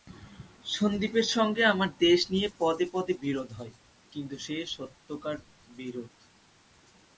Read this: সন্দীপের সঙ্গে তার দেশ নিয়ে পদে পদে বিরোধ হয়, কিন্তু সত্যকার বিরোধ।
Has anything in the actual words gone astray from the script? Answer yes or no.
yes